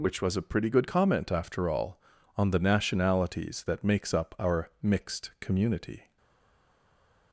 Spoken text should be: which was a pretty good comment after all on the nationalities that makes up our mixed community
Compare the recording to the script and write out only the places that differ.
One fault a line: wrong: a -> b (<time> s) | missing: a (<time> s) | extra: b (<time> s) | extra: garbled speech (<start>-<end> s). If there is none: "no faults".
no faults